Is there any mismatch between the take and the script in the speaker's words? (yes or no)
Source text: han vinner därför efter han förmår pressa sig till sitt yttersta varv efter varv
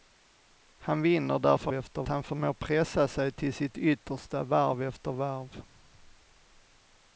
no